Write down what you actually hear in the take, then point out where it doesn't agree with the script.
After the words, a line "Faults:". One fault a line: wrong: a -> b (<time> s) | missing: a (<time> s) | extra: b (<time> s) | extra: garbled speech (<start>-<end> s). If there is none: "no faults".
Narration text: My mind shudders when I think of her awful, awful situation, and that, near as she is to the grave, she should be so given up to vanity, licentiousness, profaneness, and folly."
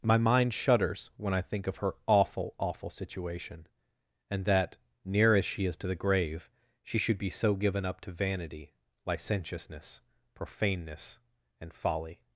My mind shudders when I think of her awful, awful situation, and that, near as she is to the grave, she should be so given up to vanity, licentiousness, profaneness, and folly."
Faults:
no faults